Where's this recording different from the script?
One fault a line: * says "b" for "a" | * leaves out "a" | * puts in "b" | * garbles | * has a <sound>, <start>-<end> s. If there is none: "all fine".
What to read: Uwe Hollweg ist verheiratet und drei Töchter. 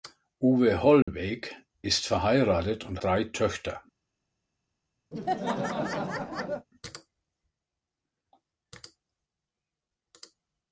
* has a dropout, 1.0-1.1 s
* has a laugh, 5.1-6.7 s